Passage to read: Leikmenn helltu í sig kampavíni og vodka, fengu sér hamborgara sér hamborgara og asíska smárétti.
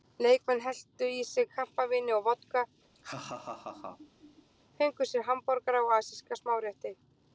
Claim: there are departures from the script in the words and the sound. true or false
true